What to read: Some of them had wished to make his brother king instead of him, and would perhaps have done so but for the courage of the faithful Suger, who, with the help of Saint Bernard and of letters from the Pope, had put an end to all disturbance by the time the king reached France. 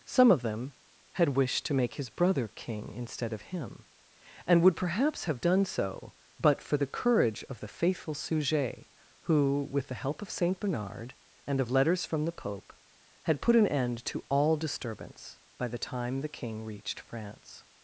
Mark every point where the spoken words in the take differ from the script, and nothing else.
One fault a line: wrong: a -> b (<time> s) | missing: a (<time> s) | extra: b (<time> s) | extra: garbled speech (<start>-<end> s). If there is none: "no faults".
no faults